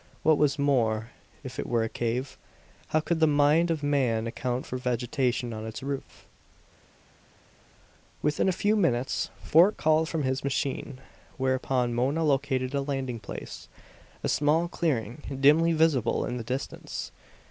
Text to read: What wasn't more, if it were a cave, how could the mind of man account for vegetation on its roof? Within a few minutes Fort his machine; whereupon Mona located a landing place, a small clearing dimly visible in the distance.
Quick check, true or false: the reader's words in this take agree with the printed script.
false